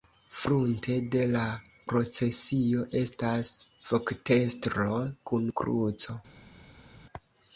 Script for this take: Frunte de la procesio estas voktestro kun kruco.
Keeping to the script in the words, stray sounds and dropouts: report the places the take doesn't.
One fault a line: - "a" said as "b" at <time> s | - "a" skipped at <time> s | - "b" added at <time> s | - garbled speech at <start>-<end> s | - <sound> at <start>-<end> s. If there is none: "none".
none